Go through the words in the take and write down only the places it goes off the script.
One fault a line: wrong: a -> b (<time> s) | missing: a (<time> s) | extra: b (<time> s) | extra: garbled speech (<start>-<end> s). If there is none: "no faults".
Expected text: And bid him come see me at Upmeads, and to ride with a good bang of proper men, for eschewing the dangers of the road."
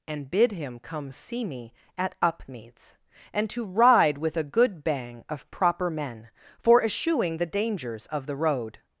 no faults